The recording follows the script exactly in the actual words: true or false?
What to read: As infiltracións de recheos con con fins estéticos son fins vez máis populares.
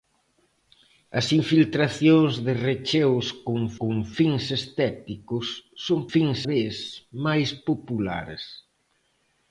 true